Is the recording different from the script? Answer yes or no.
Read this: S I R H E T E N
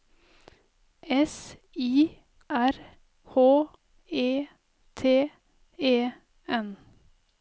no